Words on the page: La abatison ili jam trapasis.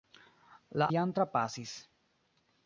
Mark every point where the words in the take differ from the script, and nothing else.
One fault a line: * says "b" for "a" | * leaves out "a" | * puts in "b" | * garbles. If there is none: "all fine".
* leaves out "abatison ili"